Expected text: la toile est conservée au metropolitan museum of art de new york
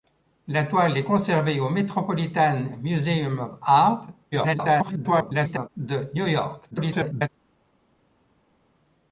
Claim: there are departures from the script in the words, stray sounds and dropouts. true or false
true